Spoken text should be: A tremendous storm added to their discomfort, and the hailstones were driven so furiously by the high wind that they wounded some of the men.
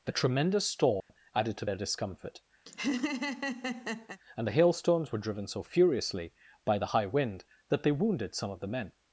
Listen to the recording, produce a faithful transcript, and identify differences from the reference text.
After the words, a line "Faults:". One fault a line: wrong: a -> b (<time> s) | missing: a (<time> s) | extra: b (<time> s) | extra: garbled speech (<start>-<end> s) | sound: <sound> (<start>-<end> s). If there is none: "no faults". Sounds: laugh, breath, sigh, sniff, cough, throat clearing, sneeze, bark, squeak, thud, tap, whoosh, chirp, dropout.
The tremendous storm added to their discomfort, and the hailstones were driven so furiously by the high wind that they wounded some of the men.
Faults:
wrong: A -> The (0.1 s)
sound: dropout (1.0-1.1 s)
sound: laugh (2.7-4.2 s)